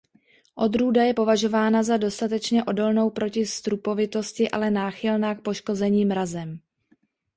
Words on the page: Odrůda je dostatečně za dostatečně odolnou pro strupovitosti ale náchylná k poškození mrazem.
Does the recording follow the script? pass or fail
fail